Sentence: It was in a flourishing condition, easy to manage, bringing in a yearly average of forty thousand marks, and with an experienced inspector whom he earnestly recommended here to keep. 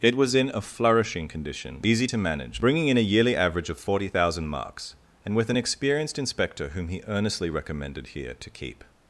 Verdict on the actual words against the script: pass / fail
pass